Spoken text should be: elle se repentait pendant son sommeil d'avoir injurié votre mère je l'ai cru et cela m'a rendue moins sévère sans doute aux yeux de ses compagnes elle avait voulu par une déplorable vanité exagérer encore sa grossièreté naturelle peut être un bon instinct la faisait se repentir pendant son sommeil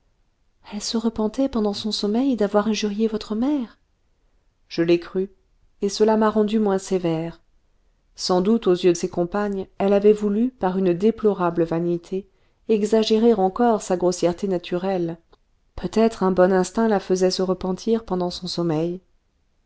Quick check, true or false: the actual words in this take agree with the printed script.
false